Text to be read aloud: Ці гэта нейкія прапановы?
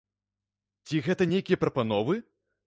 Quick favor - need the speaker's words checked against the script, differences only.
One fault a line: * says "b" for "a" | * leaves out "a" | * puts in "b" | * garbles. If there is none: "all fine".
all fine